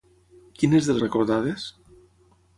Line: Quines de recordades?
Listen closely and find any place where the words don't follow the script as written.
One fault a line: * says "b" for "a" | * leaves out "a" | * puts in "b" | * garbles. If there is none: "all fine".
all fine